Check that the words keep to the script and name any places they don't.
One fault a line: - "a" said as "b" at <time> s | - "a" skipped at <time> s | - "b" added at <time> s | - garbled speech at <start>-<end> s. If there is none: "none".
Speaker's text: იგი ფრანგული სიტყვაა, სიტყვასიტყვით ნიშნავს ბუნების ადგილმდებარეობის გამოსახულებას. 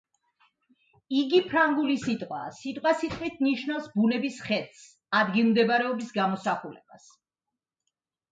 - "ხედს" added at 4.5 s